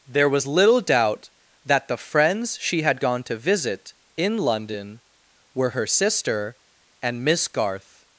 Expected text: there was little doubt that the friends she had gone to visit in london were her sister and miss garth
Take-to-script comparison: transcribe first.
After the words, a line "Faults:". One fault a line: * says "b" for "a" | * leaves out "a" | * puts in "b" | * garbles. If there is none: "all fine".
there was little doubt that the friends she had gone to visit in london were her sister and miss garth
Faults:
all fine